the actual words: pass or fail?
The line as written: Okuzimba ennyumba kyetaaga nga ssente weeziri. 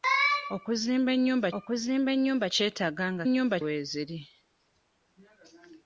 fail